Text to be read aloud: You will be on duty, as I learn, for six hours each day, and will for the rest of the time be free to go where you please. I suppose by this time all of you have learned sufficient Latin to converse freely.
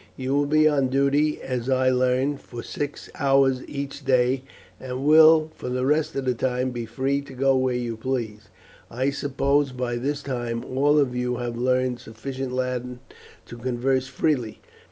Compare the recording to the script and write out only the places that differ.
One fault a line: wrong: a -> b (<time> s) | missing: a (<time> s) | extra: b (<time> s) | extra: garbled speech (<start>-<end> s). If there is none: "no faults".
no faults